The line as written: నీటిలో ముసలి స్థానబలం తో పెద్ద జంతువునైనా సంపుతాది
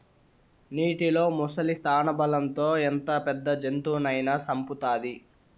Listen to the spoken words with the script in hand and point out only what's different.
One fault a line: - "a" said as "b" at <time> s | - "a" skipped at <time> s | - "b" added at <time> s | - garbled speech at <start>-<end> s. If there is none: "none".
- "ఎంత" added at 2.8 s